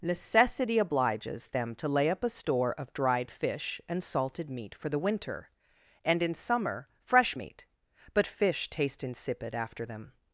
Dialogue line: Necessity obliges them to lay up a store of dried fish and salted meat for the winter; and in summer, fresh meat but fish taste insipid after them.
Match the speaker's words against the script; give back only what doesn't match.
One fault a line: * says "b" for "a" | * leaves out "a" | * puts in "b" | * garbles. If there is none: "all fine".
all fine